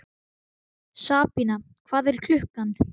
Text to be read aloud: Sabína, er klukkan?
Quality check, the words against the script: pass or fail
fail